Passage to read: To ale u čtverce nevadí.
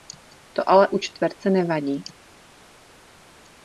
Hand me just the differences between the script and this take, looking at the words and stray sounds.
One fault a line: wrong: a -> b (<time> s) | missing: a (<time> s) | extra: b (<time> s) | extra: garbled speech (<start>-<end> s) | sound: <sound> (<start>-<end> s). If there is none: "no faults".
no faults